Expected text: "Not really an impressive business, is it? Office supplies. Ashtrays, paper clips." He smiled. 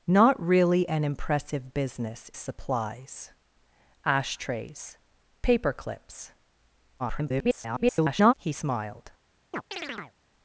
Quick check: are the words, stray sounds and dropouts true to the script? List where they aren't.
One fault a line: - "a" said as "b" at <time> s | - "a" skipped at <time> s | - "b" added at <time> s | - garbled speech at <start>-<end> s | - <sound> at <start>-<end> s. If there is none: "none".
- "is it Office" skipped at 2.3 s
- garbled speech at 7.0-8.3 s
- chirp at 9.5-10.1 s